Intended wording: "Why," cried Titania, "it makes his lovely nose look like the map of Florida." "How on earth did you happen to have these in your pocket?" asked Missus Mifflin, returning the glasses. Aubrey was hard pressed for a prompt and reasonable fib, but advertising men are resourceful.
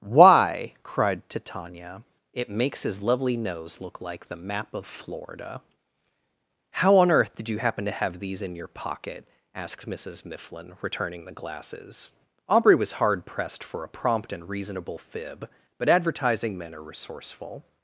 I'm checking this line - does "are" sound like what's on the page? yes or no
yes